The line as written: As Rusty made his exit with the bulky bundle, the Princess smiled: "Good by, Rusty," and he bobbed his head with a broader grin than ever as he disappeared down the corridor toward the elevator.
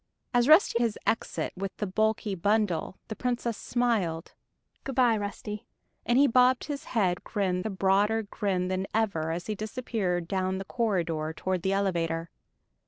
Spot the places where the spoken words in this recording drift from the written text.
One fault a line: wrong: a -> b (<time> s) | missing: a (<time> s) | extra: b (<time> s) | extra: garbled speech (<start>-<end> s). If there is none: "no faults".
missing: made (0.8 s)
wrong: with -> grin (7.1 s)